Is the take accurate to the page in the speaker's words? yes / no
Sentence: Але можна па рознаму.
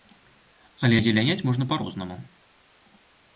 no